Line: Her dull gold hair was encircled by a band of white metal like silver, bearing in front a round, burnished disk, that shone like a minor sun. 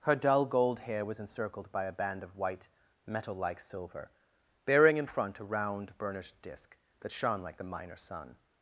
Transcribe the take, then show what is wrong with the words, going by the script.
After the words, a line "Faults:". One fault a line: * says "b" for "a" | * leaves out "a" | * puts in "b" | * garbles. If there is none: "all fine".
Her dull gold hair was encircled by a band of white metal like silver, bearing in front a round, burnished disk, that shone like the minor sun.
Faults:
* says "the" for "a"